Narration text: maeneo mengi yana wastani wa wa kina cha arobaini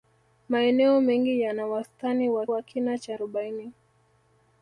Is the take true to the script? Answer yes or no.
yes